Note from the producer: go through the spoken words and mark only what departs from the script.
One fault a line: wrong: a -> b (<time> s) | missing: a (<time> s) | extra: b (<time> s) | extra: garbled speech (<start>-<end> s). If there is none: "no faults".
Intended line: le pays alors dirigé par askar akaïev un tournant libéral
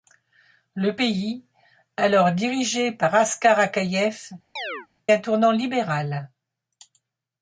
no faults